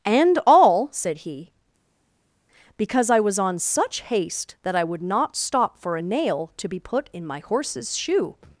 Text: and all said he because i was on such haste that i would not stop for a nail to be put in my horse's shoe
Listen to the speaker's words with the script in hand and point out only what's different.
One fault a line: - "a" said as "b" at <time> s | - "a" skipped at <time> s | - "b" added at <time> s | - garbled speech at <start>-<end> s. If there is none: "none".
none